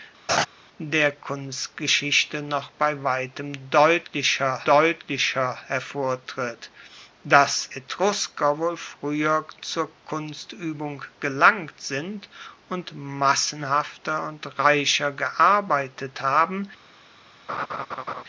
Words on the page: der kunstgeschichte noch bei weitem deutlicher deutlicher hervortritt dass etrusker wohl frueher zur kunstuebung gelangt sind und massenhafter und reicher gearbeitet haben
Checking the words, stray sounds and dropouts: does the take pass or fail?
fail